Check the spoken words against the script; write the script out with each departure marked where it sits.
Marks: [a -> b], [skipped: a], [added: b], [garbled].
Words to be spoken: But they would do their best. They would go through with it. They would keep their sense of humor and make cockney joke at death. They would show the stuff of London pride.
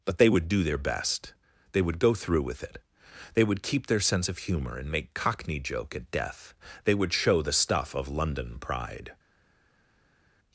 But they would do their best. They would go through with it. They would keep their sense of humor and make cockney joke at death. They would show the stuff of London pride.